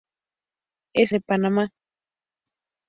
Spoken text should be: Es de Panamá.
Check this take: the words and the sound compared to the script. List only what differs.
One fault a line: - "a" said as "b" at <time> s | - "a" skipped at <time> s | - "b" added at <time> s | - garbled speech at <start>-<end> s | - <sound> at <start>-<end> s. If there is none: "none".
none